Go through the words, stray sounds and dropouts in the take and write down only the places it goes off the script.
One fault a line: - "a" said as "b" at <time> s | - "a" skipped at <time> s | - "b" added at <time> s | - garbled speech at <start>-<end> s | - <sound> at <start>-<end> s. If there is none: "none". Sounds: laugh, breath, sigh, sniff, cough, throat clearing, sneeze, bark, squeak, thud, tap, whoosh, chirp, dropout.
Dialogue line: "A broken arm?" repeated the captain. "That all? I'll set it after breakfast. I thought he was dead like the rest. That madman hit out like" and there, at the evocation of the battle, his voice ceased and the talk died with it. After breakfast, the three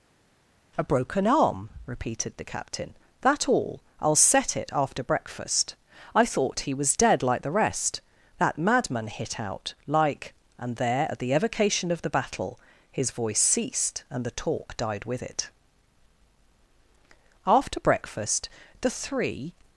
none